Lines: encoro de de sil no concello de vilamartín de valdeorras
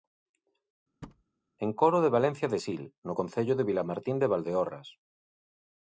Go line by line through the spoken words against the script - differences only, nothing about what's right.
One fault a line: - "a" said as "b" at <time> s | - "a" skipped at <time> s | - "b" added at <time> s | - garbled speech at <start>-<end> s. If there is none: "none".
- "valencia" added at 2.2 s